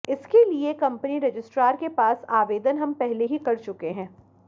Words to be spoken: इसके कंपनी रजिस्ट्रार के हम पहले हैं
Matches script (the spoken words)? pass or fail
fail